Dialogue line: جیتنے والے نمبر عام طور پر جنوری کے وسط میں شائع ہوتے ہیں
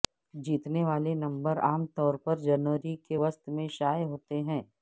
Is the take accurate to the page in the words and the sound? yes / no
yes